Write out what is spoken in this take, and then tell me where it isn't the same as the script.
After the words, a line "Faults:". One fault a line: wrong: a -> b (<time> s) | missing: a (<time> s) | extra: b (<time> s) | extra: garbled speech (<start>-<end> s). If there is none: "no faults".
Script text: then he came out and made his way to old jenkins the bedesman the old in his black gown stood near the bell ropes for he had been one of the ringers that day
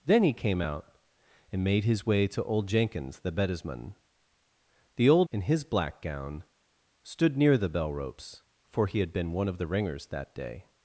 then he came out and made his way to old jenkins the bedesman the old in his black gown stood near the bell ropes for he had been one of the ringers that day
Faults:
no faults